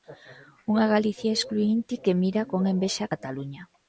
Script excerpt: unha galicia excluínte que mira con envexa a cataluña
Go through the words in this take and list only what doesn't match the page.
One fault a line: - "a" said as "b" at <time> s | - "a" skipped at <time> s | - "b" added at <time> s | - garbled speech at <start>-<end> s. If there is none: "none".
none